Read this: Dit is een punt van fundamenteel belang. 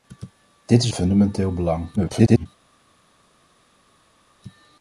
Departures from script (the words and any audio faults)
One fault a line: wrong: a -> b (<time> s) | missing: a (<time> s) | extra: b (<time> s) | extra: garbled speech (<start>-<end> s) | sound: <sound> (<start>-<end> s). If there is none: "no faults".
missing: een punt van (0.9 s)
extra: garbled speech (2.0-2.5 s)